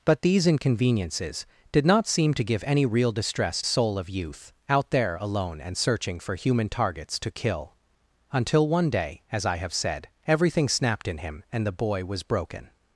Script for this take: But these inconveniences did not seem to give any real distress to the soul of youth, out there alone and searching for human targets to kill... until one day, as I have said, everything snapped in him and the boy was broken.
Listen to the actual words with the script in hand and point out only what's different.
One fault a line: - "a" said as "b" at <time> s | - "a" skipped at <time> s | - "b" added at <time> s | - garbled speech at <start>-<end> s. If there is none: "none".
- "to the" skipped at 3.6 s